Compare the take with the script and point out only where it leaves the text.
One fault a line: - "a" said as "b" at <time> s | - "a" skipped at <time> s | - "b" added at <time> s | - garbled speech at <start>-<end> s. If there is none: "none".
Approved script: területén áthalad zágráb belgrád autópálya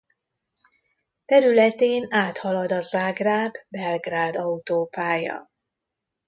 - "a" added at 2.7 s